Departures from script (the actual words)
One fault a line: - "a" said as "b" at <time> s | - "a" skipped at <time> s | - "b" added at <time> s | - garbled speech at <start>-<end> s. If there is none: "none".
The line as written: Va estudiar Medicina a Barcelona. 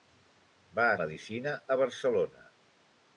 - "estudiar" skipped at 0.8 s